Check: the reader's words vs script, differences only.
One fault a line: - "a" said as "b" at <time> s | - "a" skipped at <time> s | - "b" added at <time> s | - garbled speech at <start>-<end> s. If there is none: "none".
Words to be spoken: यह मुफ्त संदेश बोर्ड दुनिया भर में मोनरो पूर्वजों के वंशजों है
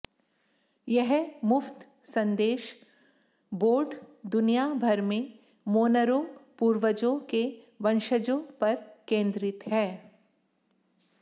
- "पर केंद्रित" added at 8.6 s